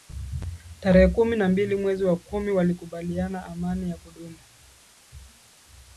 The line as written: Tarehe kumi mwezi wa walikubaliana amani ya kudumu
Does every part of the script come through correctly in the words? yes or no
no